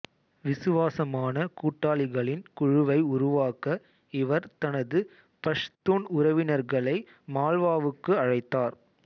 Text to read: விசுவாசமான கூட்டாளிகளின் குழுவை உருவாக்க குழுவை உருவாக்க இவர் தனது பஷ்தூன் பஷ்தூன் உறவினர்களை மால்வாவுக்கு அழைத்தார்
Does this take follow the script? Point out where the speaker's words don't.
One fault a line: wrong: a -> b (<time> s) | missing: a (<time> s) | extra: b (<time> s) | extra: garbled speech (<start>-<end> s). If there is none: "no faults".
missing: குழுவை உருவாக்க (3.8 s)
missing: பஷ்தூன் (6.1 s)